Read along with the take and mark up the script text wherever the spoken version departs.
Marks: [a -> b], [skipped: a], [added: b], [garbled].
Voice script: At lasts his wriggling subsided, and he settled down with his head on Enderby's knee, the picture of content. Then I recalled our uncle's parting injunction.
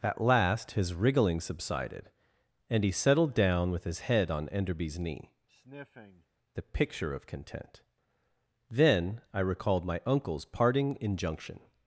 At [lasts -> last] his wriggling subsided, and he settled down with his head on Enderby's knee, the picture of content. Then I recalled [our -> my] uncle's parting injunction.